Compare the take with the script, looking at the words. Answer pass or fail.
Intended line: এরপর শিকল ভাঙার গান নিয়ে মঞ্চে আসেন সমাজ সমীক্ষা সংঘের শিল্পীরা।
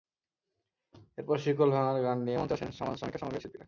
pass